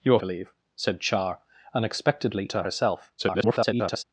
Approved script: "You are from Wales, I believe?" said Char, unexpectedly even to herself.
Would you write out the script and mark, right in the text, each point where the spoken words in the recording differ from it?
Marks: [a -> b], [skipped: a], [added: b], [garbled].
"You are [skipped: from Wales, I] believe?" said Char, unexpectedly [skipped: even] to herself. [garbled]